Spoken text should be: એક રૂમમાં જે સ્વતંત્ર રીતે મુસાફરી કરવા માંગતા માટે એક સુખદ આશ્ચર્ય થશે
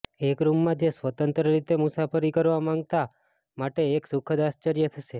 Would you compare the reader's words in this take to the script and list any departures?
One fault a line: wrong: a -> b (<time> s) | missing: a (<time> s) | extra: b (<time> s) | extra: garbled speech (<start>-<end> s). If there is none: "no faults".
no faults